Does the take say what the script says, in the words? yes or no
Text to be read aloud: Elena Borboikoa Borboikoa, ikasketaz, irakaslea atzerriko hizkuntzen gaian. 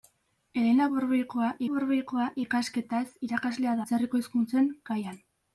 yes